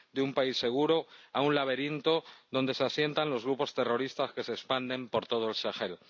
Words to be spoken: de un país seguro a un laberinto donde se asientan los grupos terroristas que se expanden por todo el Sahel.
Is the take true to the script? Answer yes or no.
yes